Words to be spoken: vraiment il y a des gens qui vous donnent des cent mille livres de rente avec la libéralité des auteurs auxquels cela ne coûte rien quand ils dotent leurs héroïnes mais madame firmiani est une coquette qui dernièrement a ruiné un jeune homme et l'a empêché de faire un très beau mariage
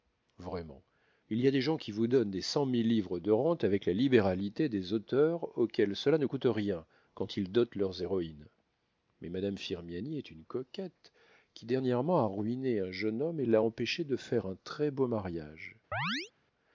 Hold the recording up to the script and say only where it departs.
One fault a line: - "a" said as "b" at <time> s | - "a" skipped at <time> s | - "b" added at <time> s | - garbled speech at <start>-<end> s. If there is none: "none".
none